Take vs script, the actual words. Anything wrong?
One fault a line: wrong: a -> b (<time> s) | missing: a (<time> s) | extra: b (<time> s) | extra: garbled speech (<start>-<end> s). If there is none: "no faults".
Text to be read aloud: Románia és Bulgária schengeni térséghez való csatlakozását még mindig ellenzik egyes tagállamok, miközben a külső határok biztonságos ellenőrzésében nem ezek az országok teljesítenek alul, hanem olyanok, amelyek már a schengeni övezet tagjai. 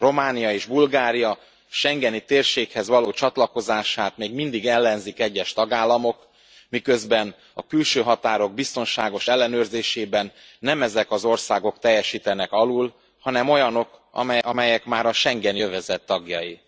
no faults